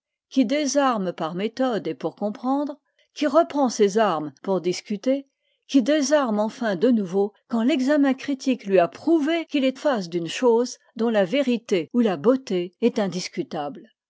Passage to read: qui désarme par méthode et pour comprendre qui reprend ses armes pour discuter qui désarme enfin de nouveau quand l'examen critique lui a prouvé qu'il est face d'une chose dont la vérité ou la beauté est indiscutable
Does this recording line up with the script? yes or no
yes